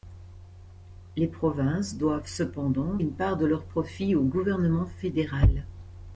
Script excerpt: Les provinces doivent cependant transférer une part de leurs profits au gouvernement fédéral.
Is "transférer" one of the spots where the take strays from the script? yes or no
yes